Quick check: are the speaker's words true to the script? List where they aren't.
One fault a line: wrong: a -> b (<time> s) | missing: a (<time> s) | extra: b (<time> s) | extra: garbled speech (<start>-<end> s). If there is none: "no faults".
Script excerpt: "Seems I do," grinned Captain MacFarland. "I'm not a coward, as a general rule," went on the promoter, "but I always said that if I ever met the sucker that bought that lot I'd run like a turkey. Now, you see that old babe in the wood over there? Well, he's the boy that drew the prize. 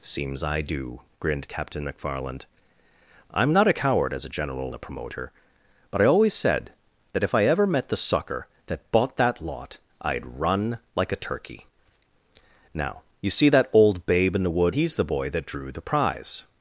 missing: rule went on (4.7 s)
missing: over there Well (14.8 s)